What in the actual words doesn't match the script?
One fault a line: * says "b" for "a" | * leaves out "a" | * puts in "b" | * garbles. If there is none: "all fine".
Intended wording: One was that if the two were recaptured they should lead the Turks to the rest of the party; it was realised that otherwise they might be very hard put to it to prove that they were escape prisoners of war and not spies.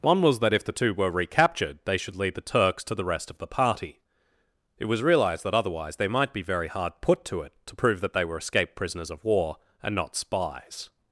* says "escaped" for "escape"